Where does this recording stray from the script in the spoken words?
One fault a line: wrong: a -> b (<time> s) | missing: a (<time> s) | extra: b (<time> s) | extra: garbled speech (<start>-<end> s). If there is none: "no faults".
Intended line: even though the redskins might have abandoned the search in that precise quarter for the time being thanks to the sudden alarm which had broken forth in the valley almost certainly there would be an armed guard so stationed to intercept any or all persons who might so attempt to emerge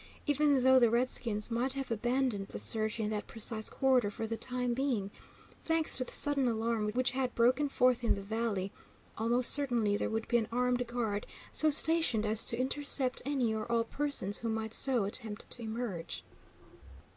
extra: as (12.2 s)